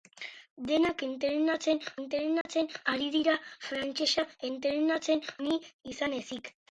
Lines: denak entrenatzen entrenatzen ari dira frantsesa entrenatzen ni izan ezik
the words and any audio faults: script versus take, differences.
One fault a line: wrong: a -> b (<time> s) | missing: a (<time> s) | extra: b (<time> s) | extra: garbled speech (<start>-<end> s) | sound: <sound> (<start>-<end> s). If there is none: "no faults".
sound: dropout (2.4-2.5 s)